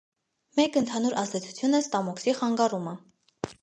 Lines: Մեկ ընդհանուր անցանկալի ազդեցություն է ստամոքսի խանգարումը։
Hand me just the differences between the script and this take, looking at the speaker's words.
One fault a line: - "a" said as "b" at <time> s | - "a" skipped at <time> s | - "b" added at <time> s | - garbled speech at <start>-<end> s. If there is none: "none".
- "անցանկալի" skipped at 1.2 s